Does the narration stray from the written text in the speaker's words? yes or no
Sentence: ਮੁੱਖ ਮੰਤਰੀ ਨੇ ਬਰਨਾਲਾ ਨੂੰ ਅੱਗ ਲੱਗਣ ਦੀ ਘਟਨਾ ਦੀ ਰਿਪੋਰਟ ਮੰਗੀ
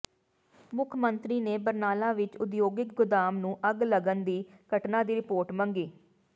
yes